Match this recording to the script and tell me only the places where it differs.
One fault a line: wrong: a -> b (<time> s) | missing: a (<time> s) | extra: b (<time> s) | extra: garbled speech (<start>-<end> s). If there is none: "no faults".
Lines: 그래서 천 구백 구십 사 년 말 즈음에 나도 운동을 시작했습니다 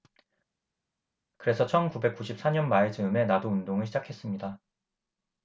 no faults